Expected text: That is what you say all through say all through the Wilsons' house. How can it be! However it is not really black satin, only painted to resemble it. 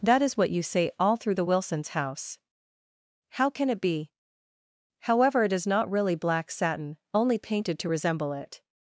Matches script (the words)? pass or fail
fail